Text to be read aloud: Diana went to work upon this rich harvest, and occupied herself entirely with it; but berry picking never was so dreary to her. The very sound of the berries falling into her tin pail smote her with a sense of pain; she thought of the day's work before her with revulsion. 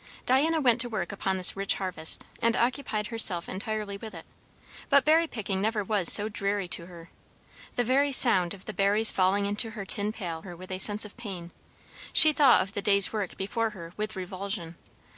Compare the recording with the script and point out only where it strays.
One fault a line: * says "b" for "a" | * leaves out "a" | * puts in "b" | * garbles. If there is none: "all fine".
* leaves out "smote"